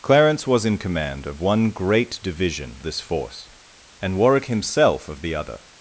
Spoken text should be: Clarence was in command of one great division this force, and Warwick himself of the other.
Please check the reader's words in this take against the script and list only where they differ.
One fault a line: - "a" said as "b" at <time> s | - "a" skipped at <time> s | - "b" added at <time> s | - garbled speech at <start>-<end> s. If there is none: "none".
none